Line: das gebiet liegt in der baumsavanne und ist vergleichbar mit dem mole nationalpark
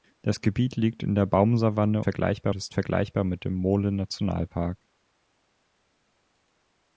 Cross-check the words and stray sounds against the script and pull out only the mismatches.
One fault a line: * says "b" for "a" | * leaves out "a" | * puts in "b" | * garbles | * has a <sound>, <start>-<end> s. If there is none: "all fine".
* says "vergleichbar" for "und"